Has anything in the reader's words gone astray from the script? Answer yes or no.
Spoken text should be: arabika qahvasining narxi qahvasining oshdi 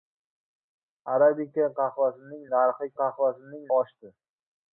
no